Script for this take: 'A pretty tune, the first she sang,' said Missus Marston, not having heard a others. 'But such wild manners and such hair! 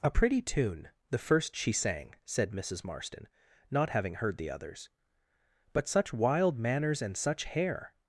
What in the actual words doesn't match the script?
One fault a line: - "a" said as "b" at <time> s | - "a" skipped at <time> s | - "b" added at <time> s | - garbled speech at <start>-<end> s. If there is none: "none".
- "a" said as "the" at 4.4 s